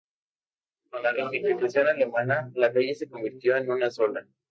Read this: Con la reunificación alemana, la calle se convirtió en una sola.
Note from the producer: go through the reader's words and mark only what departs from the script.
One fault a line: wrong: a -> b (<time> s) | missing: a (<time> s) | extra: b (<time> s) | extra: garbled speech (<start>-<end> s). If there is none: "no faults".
no faults